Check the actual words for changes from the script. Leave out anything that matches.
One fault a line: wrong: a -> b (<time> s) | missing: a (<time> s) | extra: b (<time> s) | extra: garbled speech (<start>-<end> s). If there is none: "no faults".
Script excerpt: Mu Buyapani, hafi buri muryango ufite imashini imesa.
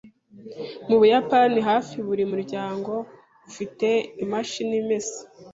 no faults